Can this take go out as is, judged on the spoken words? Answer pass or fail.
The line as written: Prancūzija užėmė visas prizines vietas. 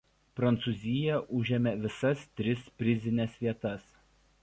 fail